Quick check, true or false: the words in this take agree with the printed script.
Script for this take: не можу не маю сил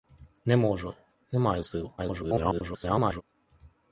false